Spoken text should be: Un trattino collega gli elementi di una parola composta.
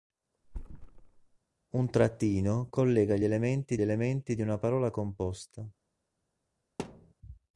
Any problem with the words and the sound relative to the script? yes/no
yes